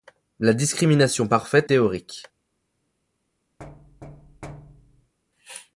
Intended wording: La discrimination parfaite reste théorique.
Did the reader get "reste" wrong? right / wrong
wrong